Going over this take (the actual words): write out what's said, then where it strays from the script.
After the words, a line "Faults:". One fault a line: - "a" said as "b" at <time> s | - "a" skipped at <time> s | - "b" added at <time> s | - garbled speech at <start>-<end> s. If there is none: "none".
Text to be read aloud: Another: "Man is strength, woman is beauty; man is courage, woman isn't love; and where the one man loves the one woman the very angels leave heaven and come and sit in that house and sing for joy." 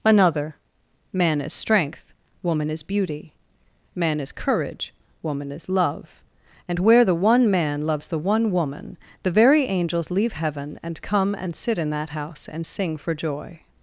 Another: "Man is strength, woman is beauty; man is courage, woman is love; and where the one man loves the one woman the very angels leave heaven and come and sit in that house and sing for joy."
Faults:
- "isn't" said as "is" at 5.5 s